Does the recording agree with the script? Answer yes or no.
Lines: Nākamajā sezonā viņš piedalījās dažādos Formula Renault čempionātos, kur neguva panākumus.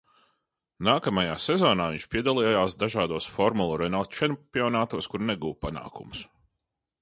yes